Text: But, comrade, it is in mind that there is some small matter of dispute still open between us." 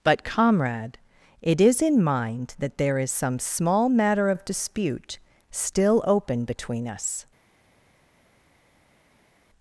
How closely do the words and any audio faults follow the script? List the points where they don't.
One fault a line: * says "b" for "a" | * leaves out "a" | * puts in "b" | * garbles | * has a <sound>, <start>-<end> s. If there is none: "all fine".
all fine